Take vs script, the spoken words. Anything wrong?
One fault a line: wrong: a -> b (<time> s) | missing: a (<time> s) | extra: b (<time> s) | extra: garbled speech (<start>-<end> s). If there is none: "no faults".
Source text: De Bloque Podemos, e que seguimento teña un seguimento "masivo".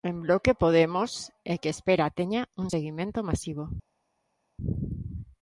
wrong: De -> En (0.0 s)
wrong: seguimento -> espera (1.7 s)